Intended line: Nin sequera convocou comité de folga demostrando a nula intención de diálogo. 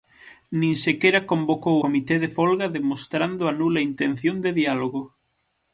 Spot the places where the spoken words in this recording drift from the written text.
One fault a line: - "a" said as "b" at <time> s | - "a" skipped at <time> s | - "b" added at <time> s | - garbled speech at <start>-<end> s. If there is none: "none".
none